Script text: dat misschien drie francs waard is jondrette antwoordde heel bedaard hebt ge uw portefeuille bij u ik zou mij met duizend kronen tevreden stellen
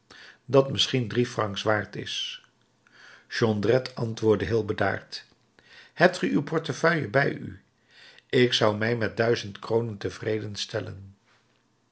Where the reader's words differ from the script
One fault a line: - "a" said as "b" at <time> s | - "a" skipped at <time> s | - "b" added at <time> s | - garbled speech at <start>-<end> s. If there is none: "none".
none